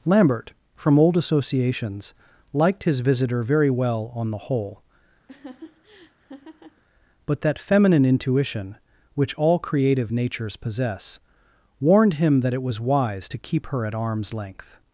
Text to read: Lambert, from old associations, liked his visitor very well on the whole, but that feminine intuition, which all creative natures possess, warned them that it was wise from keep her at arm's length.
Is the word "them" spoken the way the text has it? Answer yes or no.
no